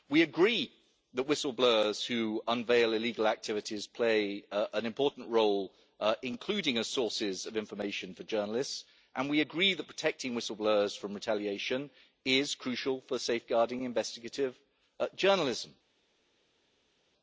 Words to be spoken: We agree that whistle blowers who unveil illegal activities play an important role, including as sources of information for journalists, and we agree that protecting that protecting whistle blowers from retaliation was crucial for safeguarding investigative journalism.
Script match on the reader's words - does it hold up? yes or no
no